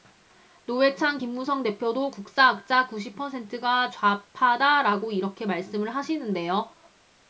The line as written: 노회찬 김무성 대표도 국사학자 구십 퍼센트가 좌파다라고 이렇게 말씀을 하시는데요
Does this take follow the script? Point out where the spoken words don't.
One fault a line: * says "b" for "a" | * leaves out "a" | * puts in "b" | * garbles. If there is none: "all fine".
all fine